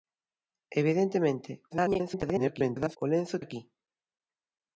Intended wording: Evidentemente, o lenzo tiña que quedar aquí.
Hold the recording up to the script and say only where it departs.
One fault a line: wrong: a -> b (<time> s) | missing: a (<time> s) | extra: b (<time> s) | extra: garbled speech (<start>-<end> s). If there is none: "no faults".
extra: garbled speech (1.7-3.0 s)
missing: tiña que quedar (3.4 s)